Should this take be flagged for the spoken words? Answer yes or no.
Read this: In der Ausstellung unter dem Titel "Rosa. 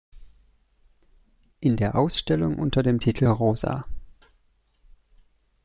no